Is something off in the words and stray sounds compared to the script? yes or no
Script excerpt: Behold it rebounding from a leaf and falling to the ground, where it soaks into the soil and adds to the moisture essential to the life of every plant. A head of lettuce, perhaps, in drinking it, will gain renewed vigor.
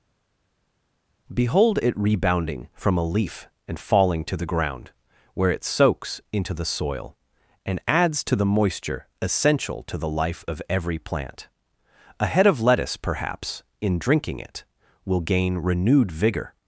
no